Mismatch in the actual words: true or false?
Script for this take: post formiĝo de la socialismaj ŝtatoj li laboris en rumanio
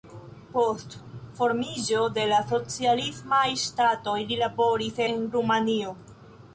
false